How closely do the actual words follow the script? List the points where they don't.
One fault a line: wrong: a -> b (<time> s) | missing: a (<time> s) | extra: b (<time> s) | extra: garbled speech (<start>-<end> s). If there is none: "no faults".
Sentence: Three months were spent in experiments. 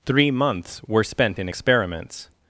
no faults